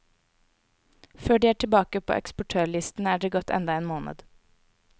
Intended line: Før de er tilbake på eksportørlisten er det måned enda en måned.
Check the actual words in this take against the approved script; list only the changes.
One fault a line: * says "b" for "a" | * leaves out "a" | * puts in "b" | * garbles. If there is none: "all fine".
* says "gått" for "måned"